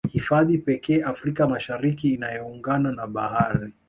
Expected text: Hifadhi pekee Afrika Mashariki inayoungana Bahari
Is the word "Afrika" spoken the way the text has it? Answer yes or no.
yes